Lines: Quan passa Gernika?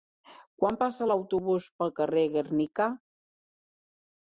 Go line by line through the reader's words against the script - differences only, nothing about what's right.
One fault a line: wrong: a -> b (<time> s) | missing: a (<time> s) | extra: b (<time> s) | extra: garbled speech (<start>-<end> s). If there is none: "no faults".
extra: l'autobús pel carrer (1.1 s)